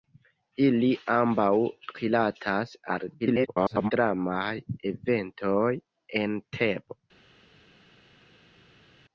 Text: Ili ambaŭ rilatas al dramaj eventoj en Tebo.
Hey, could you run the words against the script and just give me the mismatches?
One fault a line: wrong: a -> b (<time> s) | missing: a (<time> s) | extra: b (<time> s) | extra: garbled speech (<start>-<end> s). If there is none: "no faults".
extra: garbled speech (3.2-3.9 s)